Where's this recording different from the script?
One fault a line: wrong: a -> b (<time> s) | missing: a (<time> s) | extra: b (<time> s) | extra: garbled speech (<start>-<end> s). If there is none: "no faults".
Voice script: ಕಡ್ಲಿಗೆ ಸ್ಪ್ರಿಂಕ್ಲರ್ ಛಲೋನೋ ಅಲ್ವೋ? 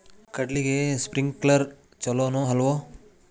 no faults